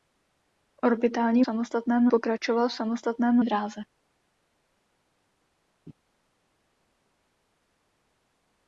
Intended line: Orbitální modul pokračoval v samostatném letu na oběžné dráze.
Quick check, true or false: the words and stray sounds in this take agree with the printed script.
false